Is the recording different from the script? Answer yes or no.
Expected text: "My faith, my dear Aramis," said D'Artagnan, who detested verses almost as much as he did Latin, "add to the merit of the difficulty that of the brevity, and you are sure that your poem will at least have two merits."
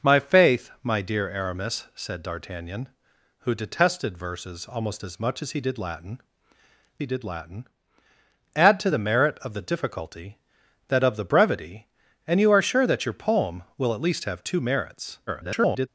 yes